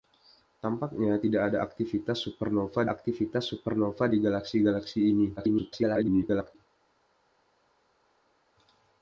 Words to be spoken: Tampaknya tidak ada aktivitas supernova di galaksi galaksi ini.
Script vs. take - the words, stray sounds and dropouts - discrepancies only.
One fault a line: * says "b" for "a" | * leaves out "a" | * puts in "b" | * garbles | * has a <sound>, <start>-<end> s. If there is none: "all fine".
* puts in "aktivitas supernova"
* garbles